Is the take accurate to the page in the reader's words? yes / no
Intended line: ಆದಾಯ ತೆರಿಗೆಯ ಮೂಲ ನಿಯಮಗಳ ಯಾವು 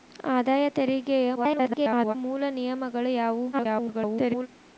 no